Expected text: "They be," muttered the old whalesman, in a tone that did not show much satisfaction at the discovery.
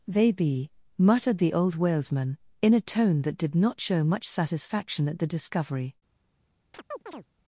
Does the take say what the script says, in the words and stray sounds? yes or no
no